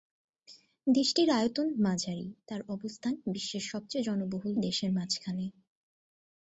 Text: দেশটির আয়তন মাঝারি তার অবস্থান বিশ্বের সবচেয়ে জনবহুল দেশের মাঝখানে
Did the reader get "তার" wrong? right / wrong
right